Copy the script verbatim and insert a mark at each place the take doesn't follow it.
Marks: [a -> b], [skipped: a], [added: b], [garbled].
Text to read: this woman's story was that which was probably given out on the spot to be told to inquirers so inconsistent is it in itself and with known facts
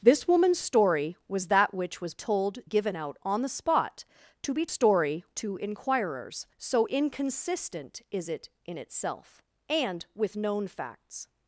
this woman's story was that which was [probably -> told] given out on the spot to be [told -> story] to inquirers so inconsistent is it in itself and with known facts